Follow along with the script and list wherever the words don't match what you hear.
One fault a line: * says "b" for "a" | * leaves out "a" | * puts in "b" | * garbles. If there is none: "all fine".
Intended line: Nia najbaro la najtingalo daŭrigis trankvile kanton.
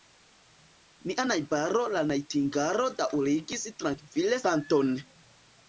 all fine